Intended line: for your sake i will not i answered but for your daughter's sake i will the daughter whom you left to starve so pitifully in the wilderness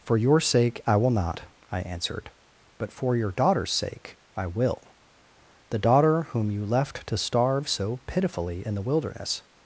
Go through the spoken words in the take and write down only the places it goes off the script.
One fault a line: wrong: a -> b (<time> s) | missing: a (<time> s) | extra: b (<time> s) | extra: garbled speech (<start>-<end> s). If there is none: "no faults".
no faults